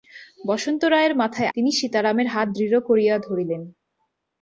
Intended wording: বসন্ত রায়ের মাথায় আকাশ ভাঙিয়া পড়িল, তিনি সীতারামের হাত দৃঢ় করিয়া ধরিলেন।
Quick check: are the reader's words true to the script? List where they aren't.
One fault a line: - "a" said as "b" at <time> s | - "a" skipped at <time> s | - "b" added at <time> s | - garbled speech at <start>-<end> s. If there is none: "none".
- "আকাশ ভাঙিয়া পড়িল" skipped at 1.5 s